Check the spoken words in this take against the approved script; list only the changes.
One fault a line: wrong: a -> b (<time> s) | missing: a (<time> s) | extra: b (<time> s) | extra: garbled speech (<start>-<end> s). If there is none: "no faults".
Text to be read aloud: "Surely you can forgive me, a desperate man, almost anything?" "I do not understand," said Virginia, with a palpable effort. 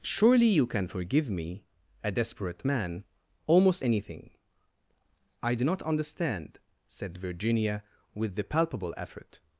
wrong: a -> the (8.4 s)